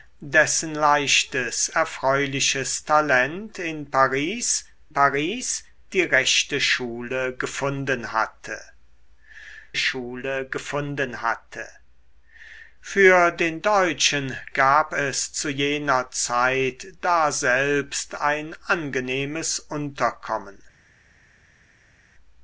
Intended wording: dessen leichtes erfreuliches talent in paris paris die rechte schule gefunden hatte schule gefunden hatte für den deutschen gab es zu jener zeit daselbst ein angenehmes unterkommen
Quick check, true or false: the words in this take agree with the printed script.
true